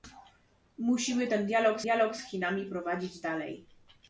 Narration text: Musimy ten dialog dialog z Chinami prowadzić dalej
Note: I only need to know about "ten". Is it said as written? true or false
true